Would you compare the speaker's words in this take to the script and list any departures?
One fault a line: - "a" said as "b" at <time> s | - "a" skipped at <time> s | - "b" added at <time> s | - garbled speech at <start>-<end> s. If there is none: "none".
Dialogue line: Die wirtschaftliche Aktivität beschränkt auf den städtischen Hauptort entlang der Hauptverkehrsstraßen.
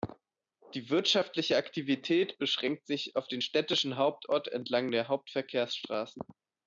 - "sich" added at 2.9 s